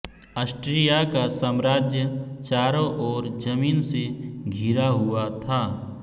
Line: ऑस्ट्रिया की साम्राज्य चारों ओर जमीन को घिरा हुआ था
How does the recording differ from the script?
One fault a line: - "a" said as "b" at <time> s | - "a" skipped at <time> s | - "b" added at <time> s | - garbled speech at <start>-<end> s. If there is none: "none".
- "की" said as "का" at 1.1 s
- "को" said as "से" at 3.9 s